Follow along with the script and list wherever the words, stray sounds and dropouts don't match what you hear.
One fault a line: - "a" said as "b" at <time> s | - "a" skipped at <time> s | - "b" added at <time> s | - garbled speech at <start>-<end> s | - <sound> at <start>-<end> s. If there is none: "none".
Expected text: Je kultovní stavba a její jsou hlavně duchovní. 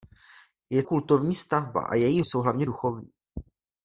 none